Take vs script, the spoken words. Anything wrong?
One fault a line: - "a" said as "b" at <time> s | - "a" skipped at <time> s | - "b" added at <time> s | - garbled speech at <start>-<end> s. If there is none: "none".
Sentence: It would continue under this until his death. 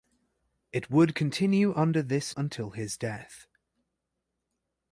none